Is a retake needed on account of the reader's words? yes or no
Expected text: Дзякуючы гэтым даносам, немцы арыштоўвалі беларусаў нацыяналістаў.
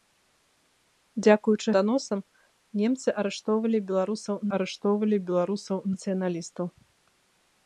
yes